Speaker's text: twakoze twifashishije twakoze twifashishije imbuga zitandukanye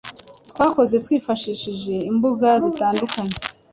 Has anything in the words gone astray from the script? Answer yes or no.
yes